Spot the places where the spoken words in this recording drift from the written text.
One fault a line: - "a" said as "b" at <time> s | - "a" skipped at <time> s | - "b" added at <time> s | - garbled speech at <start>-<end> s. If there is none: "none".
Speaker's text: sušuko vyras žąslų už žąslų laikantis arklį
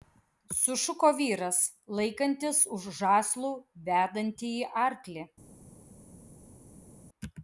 - "žąslų" said as "laikantis" at 2.0 s
- "laikantis" said as "vedantįjį" at 3.9 s